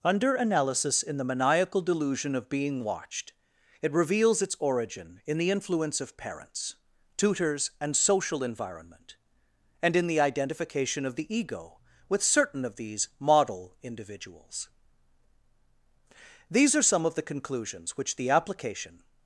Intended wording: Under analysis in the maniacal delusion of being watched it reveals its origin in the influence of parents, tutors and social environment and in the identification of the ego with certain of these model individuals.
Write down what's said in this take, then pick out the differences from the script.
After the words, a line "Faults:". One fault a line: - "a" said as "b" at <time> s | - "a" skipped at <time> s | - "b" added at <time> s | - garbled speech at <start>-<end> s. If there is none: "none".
Under analysis in the maniacal delusion of being watched it reveals its origin in the influence of parents, tutors and social environment and in the identification of the ego with certain of these model individuals. These are some of the conclusions which the application
Faults:
- "These are some of the conclusions which the application" added at 16.5 s